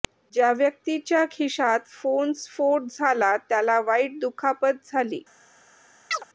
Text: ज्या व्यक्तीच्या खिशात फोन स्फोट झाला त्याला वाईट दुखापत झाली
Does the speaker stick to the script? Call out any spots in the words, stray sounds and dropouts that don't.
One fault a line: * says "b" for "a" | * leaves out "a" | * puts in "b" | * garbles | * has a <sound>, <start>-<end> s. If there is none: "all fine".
* has a chirp, 6.1-6.2 s